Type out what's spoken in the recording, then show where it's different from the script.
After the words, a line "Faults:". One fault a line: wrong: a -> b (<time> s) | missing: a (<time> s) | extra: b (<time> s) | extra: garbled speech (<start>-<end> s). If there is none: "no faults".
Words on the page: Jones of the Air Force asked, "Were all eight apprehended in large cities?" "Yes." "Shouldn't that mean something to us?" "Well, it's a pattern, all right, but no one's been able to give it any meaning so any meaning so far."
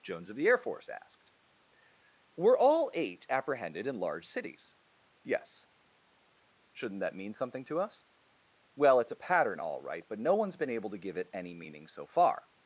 Jones of the Air Force asked, "Were all eight apprehended in large cities?" "Yes." "Shouldn't that mean something to us?" "Well, it's a pattern, all right, but no one's been able to give it any meaning so far."
Faults:
missing: any meaning so (12.1 s)